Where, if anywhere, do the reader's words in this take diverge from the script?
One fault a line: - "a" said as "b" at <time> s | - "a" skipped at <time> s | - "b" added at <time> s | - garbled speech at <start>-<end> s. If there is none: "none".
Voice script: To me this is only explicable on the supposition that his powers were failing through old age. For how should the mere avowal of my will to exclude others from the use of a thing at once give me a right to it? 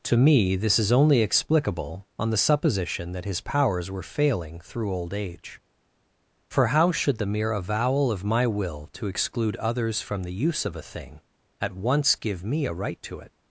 none